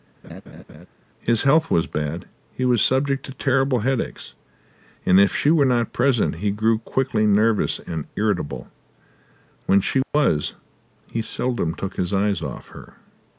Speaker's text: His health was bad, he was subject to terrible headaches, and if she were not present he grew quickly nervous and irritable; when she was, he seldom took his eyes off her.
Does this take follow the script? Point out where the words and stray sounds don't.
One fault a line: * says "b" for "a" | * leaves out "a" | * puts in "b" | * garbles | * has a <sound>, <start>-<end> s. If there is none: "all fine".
* has a laugh, 0.2-0.9 s
* has a dropout, 10.0-10.1 s